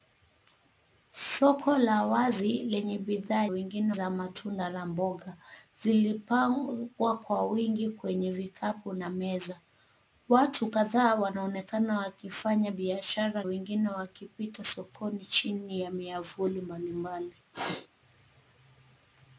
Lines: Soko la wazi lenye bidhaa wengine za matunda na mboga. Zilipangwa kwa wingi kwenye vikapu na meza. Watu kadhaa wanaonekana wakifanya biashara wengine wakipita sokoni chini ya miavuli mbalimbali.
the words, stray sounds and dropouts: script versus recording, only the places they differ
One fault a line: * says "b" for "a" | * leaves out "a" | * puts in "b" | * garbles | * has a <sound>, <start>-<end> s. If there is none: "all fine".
* has a sneeze, 17.5-17.9 s